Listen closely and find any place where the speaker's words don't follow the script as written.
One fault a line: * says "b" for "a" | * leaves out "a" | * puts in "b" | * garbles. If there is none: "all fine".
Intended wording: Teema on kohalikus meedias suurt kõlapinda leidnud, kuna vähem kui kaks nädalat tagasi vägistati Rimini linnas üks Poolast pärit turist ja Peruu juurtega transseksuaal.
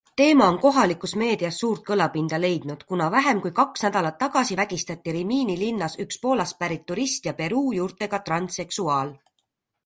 all fine